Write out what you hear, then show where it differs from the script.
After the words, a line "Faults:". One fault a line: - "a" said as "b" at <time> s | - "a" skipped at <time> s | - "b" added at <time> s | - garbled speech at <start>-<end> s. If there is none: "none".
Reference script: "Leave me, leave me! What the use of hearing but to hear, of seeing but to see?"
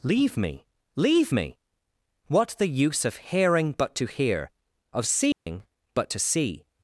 "Leave me, leave me! What the use of hearing but to hear, of seeing but to see?"
Faults:
none